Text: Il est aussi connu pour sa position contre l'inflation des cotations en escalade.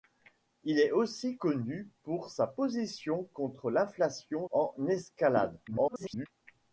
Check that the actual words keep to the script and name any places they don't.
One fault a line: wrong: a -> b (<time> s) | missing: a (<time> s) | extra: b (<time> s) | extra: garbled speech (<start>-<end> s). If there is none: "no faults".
missing: des cotations (4.5 s)
extra: garbled speech (5.7-6.3 s)